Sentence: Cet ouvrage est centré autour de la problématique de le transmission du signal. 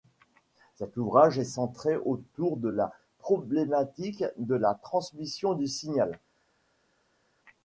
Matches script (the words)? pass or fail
fail